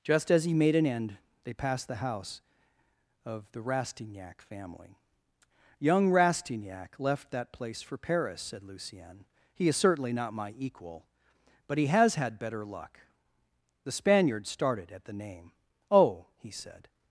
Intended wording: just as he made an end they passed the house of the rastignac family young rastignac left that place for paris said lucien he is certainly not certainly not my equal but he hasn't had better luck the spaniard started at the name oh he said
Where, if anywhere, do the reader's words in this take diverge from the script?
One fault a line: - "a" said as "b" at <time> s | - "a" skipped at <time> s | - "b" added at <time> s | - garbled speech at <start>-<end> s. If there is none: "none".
- "certainly not" skipped at 10.3 s
- "hasn't" said as "has" at 11.8 s